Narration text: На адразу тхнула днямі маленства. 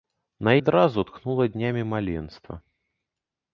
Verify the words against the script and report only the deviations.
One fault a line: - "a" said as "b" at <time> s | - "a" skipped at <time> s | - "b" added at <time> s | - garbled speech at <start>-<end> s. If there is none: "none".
none